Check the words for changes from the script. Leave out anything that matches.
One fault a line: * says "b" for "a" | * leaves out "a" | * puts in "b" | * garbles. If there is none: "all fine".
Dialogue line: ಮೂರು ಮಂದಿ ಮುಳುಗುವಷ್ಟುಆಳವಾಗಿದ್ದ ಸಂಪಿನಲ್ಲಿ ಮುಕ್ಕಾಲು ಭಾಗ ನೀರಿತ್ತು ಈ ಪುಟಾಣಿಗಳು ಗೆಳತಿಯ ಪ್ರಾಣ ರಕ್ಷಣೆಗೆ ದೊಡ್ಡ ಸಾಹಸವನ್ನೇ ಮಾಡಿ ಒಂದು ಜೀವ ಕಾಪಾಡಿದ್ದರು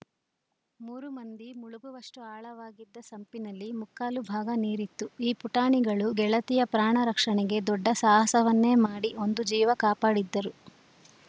all fine